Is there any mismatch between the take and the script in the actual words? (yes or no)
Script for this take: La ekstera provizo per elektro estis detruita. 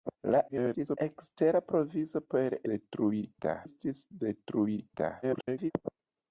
yes